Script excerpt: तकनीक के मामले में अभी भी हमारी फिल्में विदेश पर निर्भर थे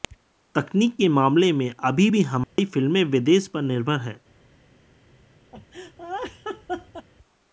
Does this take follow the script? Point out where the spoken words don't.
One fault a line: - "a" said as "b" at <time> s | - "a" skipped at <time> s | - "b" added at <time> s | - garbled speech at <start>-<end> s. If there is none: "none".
- "थे" said as "हैं" at 4.0 s